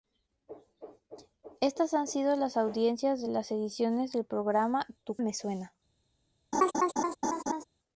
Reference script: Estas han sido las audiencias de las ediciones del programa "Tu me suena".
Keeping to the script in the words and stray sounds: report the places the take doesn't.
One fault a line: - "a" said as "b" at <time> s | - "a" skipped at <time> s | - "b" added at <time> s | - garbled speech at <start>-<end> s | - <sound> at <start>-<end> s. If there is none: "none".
- laugh at 6.5-7.6 s